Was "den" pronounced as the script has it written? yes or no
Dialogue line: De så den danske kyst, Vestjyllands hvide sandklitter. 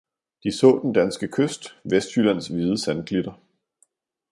yes